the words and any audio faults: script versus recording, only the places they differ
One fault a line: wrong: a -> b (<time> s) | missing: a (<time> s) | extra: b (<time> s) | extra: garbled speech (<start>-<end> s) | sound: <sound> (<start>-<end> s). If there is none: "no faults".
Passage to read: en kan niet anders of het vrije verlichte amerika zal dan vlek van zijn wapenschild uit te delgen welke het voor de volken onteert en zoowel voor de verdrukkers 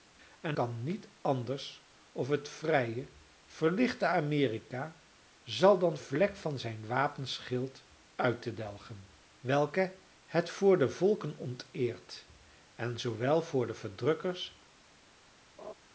sound: laugh (15.6-15.7 s)